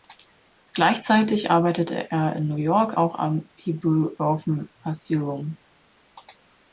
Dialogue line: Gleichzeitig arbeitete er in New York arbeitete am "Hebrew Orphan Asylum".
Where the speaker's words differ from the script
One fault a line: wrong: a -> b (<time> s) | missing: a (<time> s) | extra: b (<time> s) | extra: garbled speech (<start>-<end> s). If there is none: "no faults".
wrong: arbeitete -> auch (2.9 s)